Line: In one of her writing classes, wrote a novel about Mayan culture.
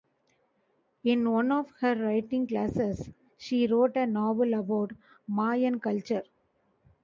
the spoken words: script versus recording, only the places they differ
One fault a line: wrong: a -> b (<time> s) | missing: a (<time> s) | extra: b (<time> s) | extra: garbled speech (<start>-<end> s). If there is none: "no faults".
extra: she (3.4 s)